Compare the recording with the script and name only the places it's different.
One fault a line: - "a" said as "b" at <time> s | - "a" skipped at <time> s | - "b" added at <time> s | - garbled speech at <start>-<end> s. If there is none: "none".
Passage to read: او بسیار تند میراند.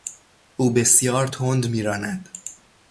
none